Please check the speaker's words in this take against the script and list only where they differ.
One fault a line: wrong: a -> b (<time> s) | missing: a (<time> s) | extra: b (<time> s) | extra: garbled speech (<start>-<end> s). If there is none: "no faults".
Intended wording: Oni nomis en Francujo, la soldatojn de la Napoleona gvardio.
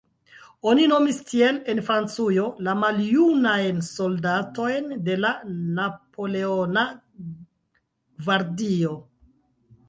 extra: tiel (1.3 s)
extra: maljunajn (2.8 s)